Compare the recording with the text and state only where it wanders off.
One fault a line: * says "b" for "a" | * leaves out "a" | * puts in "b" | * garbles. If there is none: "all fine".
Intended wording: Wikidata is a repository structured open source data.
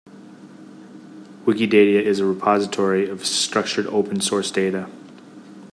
* puts in "of"